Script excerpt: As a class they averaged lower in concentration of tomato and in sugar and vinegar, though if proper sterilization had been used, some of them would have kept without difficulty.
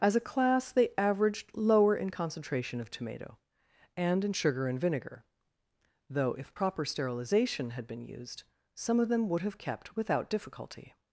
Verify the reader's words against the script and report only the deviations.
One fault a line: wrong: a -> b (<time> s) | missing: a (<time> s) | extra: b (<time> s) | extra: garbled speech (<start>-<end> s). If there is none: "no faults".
no faults